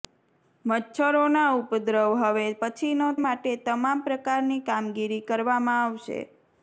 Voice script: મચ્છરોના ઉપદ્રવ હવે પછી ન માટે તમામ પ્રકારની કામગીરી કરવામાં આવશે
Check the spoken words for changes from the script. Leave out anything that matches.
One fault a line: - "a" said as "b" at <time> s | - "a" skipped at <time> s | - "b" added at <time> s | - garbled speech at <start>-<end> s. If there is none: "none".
none